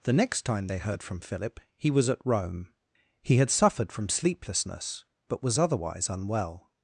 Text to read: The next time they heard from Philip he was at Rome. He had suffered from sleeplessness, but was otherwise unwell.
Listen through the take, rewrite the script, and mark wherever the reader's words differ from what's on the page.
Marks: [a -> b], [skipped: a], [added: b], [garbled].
The next time they heard from Philip he was at Rome. He had suffered from sleeplessness, but was otherwise unwell.